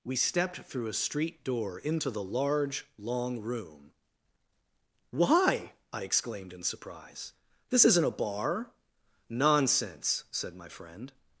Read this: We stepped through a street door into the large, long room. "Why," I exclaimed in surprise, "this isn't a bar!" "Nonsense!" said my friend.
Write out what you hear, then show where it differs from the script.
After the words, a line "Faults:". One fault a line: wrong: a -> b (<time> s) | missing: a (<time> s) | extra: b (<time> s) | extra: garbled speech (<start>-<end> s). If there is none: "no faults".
We stepped through a street door into the large, long room. "Why," I exclaimed in surprise, "this isn't a bar!" "Nonsense!" said my friend.
Faults:
no faults